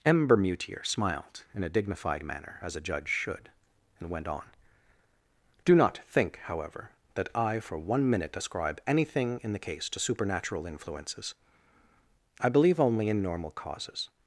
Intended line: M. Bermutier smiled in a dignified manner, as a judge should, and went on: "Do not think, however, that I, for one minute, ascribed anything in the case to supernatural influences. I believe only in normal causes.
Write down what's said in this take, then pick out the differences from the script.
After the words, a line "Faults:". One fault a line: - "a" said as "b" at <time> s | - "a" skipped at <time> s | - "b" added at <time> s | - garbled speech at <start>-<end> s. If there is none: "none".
M. Bermutier smiled in a dignified manner, as a judge should, and went on: "Do not think, however, that I, for one minute, ascribe anything in the case to supernatural influences. I believe only in normal causes.
Faults:
- "ascribed" said as "ascribe" at 8.4 s